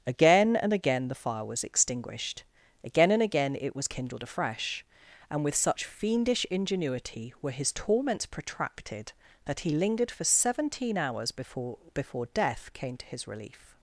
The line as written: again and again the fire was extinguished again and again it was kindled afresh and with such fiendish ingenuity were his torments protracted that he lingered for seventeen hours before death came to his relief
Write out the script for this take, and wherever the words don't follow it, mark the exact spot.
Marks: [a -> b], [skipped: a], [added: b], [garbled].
again and again the fire was extinguished again and again it was kindled afresh and with such fiendish ingenuity were his torments protracted that he lingered for seventeen hours before [added: before] death came to his relief